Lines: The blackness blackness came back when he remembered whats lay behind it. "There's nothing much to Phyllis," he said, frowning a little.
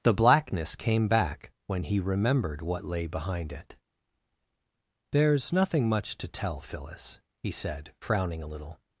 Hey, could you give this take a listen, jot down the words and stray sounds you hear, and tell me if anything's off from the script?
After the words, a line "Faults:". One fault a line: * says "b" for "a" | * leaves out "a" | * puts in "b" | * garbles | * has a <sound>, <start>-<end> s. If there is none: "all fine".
The blackness came back when he remembered what lay behind it. "There's nothing much to tell, Phyllis," he said, frowning a little.
Faults:
* leaves out "blackness"
* says "what" for "whats"
* puts in "tell"